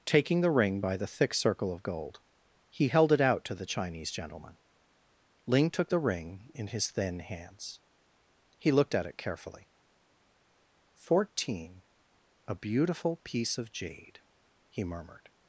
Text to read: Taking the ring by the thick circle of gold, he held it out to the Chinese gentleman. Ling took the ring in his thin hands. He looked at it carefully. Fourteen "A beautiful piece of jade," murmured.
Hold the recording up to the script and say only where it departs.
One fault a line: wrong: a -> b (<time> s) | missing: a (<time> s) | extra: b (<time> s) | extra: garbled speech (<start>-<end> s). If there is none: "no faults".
extra: he (14.7 s)